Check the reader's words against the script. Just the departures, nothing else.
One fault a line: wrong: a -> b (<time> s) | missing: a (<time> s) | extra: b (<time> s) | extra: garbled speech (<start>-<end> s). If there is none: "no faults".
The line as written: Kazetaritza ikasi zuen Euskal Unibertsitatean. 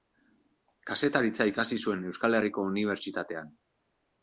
extra: Herriko (2.4 s)